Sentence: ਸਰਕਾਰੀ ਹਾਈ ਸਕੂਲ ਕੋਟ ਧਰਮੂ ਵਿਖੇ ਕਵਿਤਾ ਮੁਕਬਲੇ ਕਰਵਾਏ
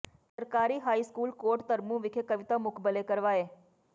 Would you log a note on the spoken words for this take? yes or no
no